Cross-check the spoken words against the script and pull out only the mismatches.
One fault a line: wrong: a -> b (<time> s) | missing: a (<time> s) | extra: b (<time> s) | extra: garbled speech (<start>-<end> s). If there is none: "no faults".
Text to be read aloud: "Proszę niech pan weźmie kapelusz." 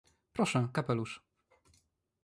missing: niech pan weźmie (0.7 s)